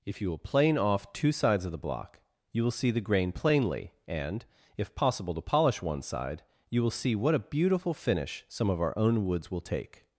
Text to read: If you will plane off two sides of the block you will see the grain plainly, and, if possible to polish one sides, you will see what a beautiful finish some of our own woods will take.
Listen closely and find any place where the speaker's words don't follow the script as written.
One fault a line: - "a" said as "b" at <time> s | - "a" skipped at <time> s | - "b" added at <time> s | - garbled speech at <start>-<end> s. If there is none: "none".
- "sides" said as "side" at 6.0 s